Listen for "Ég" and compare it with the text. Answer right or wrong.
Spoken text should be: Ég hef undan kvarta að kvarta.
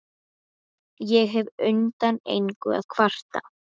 right